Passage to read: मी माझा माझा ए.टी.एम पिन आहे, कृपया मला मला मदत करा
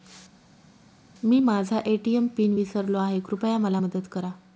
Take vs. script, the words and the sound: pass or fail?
fail